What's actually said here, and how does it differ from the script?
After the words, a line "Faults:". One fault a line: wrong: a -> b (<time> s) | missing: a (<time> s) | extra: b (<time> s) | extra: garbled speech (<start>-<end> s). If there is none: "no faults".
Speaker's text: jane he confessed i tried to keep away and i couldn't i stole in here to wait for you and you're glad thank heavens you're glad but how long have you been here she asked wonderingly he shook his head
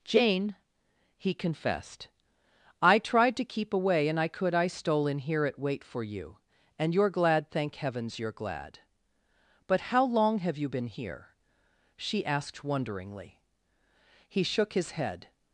jane he confessed i tried to keep away and i could i stole in here at wait for you and you're glad thank heavens you're glad but how long have you been here she asked wonderingly he shook his head
Faults:
wrong: couldn't -> could (4.3 s)
wrong: to -> at (5.5 s)